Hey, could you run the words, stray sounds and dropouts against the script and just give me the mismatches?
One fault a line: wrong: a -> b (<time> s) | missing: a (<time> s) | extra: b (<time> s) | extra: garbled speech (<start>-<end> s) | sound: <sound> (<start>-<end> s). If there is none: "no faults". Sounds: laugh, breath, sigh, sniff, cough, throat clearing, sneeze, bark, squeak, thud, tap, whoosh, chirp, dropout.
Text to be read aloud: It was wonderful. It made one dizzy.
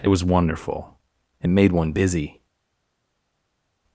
wrong: dizzy -> busy (1.9 s)